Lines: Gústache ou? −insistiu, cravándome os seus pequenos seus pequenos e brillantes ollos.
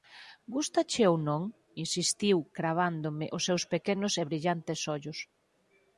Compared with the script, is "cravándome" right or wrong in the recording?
right